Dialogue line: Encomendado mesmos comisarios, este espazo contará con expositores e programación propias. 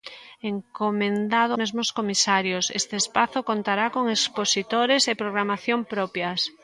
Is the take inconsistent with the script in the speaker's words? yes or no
no